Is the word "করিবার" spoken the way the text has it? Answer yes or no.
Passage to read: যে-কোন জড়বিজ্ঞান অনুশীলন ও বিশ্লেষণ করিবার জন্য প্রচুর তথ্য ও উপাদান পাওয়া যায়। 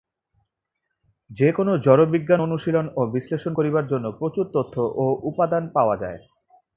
yes